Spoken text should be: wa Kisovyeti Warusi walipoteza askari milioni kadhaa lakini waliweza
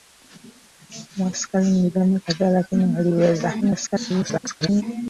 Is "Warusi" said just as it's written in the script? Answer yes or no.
no